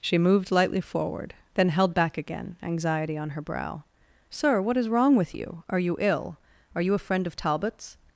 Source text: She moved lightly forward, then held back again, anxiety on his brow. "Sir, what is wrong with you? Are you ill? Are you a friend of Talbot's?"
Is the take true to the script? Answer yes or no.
no